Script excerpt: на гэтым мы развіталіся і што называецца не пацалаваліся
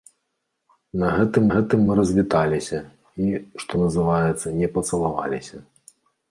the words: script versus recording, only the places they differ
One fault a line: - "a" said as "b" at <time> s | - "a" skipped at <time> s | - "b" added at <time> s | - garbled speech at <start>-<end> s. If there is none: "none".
- "гэтым" added at 1.5 s